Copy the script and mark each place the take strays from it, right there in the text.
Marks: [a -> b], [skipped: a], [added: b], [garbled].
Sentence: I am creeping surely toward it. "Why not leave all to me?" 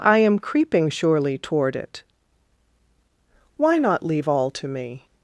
I am creeping surely toward it. "Why not leave all to me?"